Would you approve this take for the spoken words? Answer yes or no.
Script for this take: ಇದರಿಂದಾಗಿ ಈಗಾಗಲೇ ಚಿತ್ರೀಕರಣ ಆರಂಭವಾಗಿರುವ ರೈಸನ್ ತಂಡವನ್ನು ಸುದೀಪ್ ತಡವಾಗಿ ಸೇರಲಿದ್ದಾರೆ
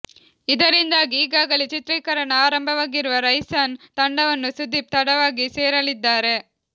yes